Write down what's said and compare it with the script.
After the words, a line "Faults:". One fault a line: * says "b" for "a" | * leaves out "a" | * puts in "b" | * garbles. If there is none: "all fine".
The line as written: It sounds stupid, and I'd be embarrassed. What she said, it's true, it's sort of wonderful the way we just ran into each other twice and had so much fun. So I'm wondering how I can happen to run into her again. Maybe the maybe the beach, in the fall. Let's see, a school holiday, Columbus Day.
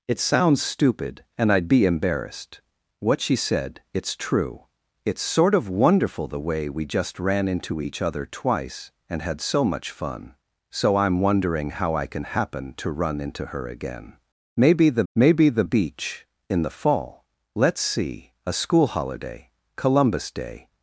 It sounds stupid, and I'd be embarrassed. What she said, it's true, it's sort of wonderful the way we just ran into each other twice and had so much fun. So I'm wondering how I can happen to run into her again. Maybe the maybe the beach, in the fall. Let's see, a school holiday, Columbus Day.
Faults:
all fine